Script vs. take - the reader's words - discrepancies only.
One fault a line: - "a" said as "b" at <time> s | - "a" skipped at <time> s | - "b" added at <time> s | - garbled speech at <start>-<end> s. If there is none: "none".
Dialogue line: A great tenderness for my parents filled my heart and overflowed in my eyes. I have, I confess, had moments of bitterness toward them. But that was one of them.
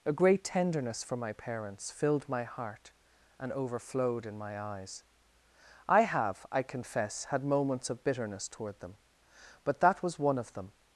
none